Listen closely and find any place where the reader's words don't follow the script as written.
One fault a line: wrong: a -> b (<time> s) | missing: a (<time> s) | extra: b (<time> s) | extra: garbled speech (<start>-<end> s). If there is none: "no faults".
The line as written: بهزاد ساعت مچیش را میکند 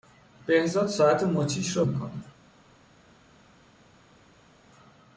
no faults